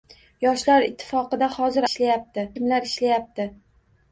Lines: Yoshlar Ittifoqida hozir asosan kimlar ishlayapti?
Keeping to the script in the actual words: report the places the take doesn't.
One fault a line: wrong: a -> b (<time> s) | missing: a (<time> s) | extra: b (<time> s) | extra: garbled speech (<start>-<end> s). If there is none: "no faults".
wrong: asosan -> ishlayapti (1.9 s)